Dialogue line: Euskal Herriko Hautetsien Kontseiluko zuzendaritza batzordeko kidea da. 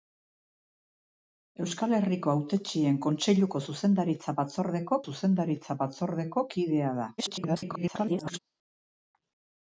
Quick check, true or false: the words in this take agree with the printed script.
false